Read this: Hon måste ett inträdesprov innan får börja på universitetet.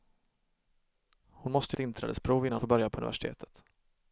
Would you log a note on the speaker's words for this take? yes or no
no